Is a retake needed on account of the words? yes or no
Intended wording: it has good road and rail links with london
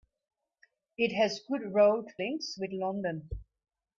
yes